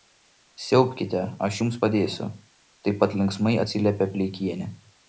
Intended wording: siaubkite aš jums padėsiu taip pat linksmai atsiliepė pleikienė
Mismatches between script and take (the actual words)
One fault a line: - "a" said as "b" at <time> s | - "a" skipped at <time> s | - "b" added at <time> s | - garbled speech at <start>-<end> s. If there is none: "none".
none